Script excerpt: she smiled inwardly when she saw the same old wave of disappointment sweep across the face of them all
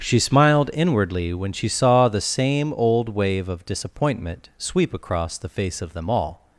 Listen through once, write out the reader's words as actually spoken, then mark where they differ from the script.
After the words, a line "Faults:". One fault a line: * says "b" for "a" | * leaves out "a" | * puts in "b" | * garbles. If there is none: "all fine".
she smiled inwardly when she saw the same old wave of disappointment sweep across the face of them all
Faults:
all fine